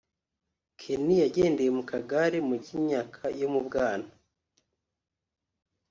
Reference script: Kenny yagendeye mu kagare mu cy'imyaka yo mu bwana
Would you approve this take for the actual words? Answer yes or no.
yes